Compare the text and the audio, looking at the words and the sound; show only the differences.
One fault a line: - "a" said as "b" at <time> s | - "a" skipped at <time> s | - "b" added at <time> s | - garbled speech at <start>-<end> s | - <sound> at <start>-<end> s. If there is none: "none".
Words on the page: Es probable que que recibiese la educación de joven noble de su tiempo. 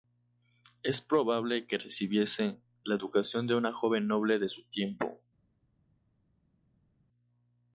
- "que" skipped at 1.8 s
- "una" added at 3.5 s